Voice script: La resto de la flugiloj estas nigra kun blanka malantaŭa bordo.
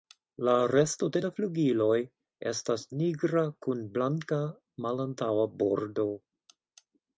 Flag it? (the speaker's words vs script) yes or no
no